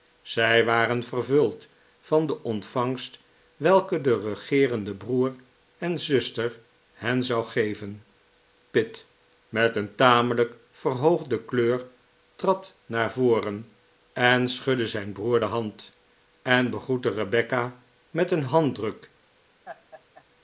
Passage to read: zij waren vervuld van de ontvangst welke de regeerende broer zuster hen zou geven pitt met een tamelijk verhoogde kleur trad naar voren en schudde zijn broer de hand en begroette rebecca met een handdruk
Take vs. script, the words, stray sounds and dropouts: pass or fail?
fail